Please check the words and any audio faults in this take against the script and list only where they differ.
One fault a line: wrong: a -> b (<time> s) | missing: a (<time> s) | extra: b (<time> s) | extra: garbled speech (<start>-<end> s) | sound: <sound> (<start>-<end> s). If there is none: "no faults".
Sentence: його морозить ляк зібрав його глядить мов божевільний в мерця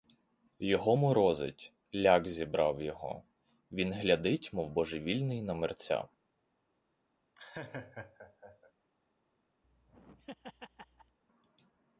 extra: він (3.7 s)
wrong: в -> на (5.4 s)
sound: laugh (7.4-8.7 s)
sound: laugh (9.6-11.2 s)